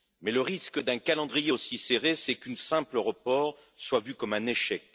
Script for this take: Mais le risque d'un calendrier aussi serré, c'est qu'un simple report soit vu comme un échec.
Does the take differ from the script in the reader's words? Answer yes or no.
no